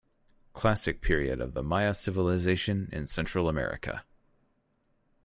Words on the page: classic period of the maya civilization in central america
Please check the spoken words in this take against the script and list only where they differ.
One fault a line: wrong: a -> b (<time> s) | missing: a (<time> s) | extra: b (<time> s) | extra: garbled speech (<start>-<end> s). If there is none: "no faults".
no faults